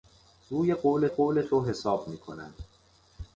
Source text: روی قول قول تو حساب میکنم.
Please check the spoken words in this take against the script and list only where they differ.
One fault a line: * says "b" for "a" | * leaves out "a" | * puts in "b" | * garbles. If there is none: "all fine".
all fine